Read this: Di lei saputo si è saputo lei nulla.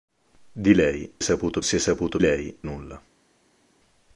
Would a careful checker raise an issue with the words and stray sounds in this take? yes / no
no